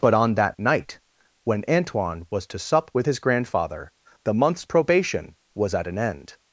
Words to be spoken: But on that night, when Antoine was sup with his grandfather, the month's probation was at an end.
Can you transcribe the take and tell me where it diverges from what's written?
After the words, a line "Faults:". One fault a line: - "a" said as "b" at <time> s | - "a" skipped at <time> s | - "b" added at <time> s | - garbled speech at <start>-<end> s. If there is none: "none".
But on that night, when Antoine was to sup with his grandfather, the month's probation was at an end.
Faults:
- "to" added at 2.5 s